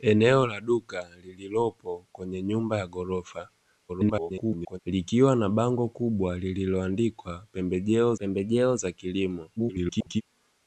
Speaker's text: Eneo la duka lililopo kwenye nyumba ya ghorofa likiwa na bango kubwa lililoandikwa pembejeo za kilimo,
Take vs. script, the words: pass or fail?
fail